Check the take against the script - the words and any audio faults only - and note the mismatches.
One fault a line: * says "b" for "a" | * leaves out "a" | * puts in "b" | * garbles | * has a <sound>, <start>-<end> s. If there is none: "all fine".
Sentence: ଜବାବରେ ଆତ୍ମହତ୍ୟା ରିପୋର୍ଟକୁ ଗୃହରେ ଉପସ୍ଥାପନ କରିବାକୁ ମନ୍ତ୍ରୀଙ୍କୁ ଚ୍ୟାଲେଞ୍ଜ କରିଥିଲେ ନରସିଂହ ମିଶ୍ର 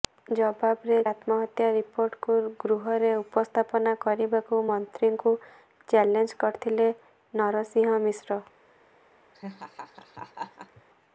* has a laugh, 9.3-10.8 s